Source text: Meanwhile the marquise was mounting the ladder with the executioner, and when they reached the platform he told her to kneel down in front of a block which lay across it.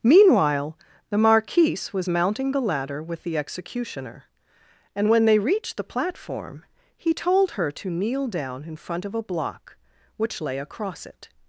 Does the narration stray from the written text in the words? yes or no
no